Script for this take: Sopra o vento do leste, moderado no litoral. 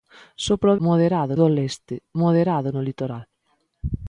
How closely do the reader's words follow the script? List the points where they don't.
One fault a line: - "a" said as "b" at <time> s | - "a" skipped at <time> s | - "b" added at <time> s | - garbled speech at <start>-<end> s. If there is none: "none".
- "vento" said as "moderado" at 0.9 s